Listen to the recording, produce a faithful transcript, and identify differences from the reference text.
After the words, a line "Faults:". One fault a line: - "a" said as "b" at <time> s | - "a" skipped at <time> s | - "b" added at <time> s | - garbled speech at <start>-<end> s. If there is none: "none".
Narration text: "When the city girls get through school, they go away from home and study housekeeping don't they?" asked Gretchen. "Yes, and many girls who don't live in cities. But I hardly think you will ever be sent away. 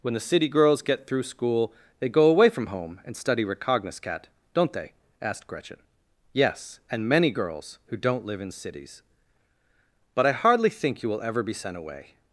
"When the city girls get through school, they go away from home and study recognoscat don't they?" asked Gretchen. "Yes, and many girls who don't live in cities. But I hardly think you will ever be sent away.
Faults:
- "housekeeping" said as "recognoscat" at 3.5 s